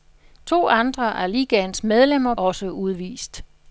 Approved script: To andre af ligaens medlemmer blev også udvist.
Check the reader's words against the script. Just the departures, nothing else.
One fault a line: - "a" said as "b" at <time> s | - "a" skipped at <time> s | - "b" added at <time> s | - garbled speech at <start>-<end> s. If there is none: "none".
- "blev" skipped at 2.3 s